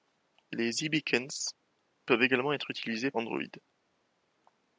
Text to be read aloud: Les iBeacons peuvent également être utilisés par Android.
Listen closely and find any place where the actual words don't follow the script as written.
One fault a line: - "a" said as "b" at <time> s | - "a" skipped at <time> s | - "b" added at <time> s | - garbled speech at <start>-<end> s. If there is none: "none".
- "par" skipped at 3.1 s